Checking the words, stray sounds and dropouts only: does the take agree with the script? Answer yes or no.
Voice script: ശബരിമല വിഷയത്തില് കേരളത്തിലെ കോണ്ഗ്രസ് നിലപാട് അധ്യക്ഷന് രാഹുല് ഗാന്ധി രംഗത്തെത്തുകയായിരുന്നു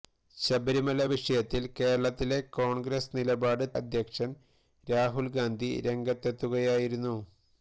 yes